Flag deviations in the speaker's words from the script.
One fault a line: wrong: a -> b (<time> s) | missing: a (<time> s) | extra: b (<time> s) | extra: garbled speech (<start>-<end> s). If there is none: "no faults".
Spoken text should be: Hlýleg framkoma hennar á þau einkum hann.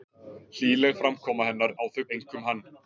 no faults